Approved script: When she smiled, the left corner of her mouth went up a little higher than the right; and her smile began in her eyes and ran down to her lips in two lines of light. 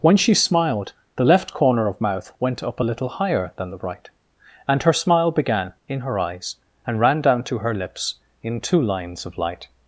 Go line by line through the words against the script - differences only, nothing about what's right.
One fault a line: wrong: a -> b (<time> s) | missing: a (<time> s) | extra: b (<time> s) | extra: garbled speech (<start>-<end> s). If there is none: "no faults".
missing: her (2.0 s)